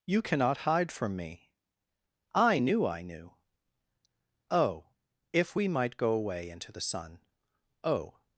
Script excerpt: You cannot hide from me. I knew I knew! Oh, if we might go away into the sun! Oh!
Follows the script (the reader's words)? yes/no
yes